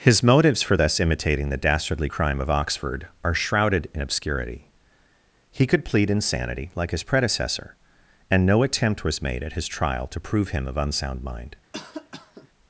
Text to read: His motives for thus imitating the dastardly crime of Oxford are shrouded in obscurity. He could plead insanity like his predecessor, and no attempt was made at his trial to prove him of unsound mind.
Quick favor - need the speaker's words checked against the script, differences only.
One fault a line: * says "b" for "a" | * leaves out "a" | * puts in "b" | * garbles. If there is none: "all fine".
all fine